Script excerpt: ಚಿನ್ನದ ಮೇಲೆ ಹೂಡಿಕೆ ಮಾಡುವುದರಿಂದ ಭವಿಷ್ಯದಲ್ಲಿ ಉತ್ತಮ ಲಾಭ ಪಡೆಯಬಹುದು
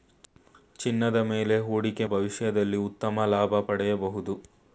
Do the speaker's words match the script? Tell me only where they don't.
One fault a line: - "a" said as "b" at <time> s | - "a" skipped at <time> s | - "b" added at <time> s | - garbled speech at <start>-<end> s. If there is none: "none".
- "ಮಾಡುವುದರಿಂದ" skipped at 2.0 s